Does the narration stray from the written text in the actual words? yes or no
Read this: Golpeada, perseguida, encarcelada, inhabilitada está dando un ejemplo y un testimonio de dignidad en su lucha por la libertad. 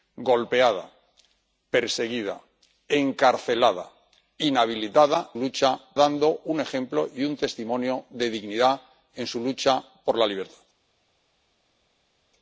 yes